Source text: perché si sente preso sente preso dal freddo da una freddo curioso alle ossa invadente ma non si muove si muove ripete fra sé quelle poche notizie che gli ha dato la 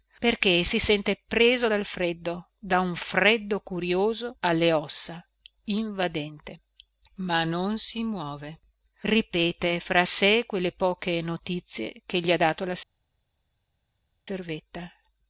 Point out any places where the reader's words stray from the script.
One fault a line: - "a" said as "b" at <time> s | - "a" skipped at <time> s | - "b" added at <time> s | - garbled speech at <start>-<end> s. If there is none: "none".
- "sente preso" skipped at 1.7 s
- "una" said as "un" at 2.8 s
- "si muove" skipped at 8.6 s